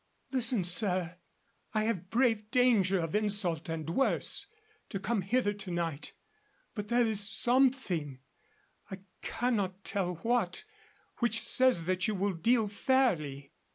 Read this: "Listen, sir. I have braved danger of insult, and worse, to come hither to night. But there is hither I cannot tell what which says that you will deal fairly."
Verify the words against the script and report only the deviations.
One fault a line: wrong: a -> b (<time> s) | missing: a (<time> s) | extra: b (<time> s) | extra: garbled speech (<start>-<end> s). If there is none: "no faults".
wrong: hither -> something (7.3 s)